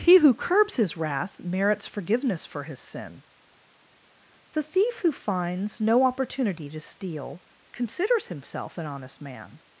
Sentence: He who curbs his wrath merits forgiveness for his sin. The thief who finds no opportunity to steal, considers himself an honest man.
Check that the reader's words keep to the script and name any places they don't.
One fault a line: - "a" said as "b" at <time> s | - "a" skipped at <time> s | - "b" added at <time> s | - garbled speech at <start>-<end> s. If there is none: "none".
none